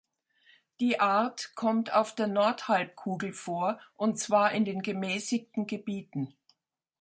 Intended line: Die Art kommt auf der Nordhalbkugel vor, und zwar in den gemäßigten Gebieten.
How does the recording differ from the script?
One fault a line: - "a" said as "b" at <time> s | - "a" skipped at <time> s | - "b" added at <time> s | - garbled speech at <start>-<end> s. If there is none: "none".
none